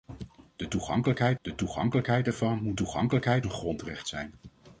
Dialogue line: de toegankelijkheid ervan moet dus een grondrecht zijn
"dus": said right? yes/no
no